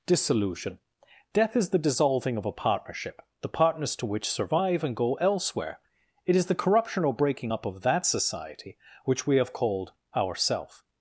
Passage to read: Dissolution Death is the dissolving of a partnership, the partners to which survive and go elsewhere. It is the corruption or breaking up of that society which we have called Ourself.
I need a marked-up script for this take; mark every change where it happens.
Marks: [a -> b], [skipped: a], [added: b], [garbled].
Dissolution Death is the dissolving of a partnership, the partners to which survive and go elsewhere. It is the corruption or breaking up of that society which we have called Ourself.